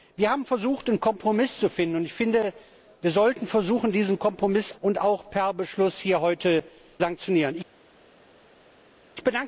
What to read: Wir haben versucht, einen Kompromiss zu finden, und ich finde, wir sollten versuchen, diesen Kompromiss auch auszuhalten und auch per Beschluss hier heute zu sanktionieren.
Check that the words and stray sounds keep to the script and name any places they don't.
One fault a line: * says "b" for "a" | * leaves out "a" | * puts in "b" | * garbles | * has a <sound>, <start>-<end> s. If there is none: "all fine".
* leaves out "auch auszuhalten"
* leaves out "zu"